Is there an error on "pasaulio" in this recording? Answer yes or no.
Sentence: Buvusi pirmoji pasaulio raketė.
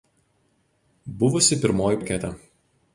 yes